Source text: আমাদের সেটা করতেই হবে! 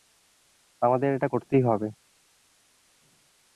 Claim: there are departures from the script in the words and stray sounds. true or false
true